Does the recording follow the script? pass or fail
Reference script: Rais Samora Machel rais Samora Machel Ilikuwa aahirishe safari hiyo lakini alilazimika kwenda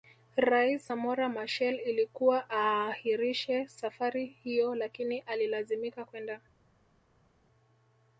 fail